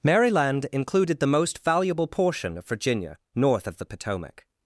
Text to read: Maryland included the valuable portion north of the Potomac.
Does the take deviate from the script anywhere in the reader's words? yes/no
yes